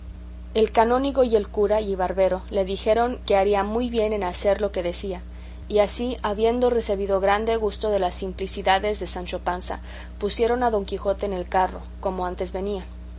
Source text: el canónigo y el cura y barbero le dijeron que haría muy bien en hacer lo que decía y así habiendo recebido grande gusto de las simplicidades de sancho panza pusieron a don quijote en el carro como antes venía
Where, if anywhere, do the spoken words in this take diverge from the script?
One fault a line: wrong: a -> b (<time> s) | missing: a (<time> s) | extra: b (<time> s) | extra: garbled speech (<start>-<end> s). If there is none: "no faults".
no faults